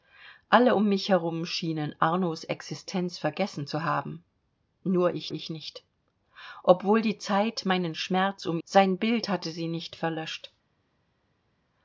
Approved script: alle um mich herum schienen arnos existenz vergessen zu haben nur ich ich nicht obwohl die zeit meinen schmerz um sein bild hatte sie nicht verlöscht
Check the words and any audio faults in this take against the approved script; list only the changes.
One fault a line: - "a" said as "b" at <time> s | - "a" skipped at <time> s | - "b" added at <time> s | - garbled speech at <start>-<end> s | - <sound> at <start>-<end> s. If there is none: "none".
none